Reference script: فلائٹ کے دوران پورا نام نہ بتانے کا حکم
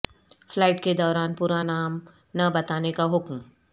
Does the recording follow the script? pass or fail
pass